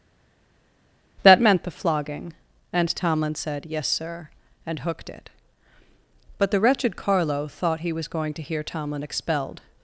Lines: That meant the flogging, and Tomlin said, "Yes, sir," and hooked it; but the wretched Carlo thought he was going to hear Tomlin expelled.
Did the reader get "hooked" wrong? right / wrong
right